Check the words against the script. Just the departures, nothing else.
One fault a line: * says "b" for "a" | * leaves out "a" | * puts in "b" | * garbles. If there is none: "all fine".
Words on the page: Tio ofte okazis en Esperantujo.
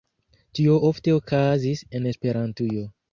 all fine